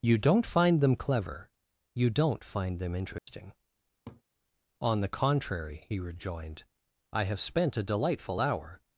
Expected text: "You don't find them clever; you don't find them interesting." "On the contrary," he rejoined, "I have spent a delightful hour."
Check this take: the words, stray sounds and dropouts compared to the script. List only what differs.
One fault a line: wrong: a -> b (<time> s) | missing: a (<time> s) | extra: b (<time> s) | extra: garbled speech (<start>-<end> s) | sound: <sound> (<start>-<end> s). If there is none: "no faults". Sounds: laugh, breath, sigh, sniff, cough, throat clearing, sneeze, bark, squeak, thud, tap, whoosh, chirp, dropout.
sound: dropout (3.2-3.3 s)
sound: laugh (4.1-4.2 s)